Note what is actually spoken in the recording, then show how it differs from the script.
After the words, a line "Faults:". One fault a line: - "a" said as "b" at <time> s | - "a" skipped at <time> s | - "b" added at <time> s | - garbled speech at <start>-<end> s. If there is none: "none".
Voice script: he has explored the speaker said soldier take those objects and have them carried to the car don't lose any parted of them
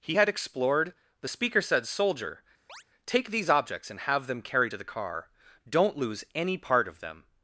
he had explored the speaker said soldier take these objects and have them carried to the car don't lose any part of them
Faults:
- "has" said as "had" at 0.1 s
- "those" said as "these" at 3.3 s
- "parted" said as "part" at 6.6 s